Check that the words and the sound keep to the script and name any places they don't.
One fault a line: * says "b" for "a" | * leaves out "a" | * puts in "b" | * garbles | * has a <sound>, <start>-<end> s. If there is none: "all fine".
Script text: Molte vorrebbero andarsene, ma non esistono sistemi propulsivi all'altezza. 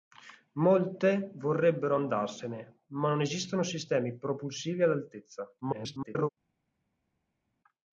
* garbles